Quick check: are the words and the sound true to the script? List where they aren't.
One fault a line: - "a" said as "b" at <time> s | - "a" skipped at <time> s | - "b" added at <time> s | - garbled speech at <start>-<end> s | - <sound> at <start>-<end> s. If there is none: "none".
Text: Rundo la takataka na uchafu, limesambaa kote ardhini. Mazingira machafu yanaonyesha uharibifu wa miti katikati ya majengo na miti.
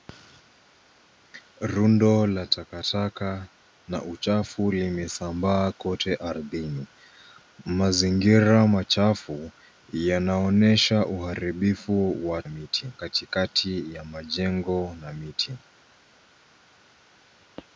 none